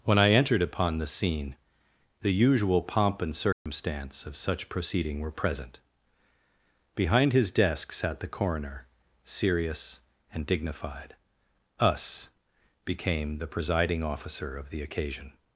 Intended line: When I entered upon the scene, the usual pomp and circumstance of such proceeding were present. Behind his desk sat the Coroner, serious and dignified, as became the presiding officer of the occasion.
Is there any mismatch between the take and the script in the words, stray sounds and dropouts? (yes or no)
yes